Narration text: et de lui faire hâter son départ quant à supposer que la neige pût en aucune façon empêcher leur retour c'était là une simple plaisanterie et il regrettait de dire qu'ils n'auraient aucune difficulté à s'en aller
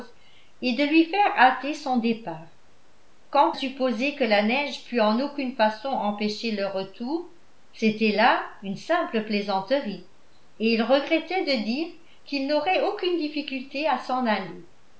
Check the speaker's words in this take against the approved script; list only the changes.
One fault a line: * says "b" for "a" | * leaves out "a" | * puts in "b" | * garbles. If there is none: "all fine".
* leaves out "à"